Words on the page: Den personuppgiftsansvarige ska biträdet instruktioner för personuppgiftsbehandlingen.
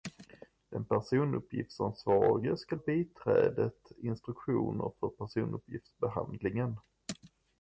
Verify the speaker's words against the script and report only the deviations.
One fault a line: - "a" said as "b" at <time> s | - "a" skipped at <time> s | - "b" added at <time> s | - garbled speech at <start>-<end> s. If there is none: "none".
none